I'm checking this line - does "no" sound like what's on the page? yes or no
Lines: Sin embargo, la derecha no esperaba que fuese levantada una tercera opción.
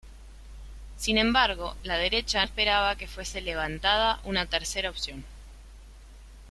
no